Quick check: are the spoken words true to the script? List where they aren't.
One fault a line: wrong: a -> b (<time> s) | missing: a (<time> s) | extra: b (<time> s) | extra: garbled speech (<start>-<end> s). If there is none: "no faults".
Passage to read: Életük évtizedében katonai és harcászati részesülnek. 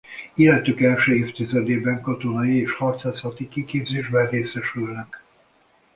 extra: első (0.8 s)
extra: kiképzésben (3.5 s)